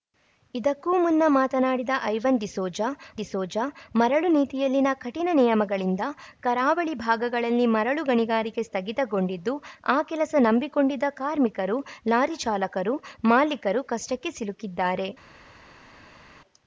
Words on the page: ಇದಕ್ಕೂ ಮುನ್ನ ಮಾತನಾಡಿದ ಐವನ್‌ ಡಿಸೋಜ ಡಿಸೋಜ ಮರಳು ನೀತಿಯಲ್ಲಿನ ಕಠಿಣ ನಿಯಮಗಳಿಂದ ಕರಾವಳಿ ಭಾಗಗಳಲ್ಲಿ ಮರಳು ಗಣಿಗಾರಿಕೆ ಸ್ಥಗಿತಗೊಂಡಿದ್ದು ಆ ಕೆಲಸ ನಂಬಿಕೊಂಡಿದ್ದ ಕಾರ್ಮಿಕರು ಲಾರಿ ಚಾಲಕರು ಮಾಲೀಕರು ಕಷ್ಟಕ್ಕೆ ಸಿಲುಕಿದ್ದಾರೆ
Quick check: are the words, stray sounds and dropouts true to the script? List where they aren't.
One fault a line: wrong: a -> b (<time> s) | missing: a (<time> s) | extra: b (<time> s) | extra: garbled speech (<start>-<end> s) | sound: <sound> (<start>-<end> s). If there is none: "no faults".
no faults